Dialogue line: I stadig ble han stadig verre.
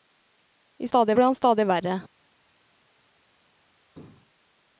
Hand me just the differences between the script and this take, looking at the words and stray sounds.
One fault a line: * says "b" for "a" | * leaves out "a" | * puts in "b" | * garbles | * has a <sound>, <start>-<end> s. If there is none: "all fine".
all fine